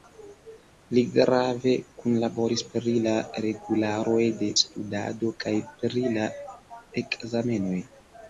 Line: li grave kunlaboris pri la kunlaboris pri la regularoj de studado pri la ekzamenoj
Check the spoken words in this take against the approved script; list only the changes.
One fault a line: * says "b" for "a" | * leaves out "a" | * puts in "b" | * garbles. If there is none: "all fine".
* leaves out "kunlaboris pri la"
* puts in "kaj"